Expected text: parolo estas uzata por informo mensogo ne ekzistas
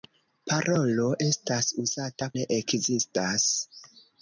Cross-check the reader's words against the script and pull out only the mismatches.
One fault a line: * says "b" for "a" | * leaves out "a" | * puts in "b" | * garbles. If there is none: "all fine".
* leaves out "por informo mensogo"